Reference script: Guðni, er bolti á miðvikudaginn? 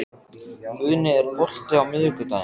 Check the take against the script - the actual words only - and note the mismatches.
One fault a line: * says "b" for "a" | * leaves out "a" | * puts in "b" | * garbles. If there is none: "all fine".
all fine